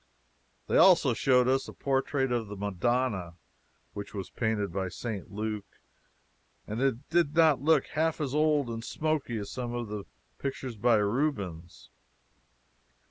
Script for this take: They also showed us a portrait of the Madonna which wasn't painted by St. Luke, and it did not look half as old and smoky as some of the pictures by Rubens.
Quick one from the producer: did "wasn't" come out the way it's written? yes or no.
no